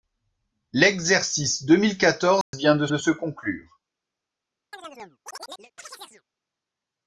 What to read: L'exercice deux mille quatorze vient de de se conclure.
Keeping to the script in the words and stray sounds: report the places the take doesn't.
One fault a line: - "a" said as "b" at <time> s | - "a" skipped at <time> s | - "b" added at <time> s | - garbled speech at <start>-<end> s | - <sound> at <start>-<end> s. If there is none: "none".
- dropout at 2.4-2.5 s
- chirp at 4.7-6.2 s